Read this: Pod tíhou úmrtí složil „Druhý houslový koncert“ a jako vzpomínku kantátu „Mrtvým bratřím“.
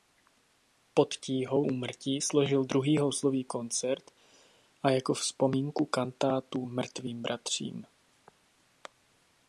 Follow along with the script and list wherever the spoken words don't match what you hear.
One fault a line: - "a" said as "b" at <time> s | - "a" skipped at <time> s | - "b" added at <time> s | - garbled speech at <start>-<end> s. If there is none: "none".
none